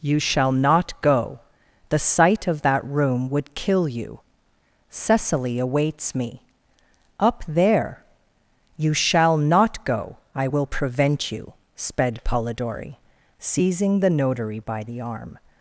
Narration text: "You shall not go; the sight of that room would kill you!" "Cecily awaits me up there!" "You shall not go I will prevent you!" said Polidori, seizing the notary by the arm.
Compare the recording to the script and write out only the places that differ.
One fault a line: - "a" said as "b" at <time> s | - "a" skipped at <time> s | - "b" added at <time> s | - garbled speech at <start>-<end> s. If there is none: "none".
- "said" said as "sped" at 11.7 s